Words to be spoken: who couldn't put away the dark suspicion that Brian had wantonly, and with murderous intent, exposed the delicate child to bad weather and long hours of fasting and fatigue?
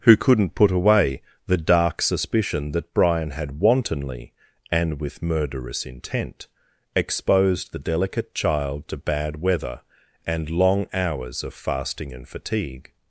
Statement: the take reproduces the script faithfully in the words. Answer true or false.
true